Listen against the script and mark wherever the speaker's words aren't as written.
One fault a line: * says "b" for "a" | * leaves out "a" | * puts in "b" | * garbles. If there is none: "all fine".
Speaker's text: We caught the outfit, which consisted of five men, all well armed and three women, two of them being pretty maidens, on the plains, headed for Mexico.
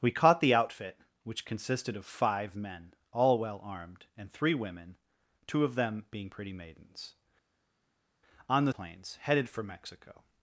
all fine